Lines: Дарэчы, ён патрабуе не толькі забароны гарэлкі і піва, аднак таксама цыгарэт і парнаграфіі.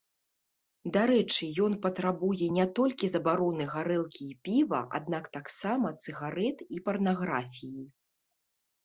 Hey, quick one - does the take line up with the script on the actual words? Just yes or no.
yes